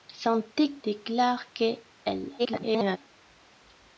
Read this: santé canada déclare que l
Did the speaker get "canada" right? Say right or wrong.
wrong